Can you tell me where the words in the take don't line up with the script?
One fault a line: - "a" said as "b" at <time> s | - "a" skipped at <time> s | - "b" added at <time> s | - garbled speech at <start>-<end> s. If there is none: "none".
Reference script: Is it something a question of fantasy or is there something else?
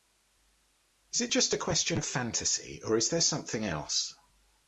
- "something" said as "just" at 1.3 s